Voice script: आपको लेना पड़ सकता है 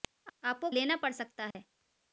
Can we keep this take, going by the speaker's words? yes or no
yes